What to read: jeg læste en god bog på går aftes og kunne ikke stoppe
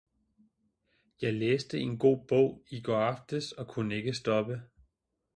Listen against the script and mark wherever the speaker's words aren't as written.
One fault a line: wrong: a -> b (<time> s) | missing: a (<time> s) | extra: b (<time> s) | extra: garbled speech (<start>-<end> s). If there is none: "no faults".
wrong: på -> i (2.7 s)